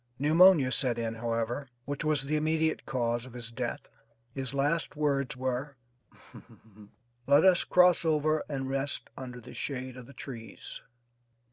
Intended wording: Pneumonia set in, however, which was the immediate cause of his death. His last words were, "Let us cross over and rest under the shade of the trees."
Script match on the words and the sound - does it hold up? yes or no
no